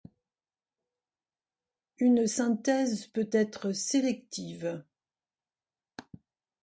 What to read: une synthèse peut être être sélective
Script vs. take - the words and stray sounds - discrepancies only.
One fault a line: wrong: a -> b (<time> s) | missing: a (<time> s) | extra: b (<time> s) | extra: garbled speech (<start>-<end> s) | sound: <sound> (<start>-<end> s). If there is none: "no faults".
missing: être (3.7 s)